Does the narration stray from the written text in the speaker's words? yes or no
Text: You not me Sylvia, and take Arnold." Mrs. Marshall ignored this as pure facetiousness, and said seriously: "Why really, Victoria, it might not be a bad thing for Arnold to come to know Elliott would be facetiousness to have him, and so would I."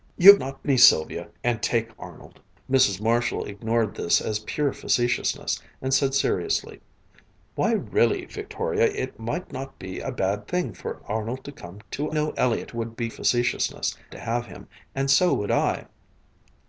no